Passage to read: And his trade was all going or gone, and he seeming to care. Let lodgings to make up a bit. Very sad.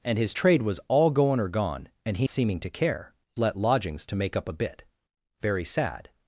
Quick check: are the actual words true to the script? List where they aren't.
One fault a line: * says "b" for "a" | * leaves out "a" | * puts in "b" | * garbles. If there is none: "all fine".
all fine